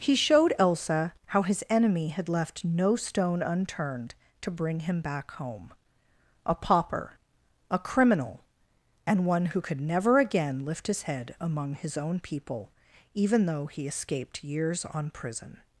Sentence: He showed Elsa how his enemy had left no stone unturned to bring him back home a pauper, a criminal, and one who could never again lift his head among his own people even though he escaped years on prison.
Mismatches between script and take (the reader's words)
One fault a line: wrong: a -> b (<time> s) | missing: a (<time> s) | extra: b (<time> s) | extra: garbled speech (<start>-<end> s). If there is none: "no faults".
no faults